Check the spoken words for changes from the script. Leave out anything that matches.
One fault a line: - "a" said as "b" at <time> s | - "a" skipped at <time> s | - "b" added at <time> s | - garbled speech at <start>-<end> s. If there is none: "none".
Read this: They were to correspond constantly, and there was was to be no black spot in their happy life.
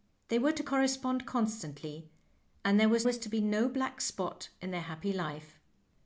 none